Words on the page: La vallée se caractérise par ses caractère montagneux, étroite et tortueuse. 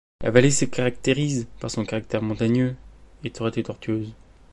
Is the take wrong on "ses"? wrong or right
wrong